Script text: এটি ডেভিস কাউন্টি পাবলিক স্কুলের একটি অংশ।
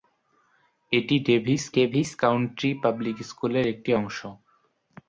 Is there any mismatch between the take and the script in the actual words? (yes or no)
yes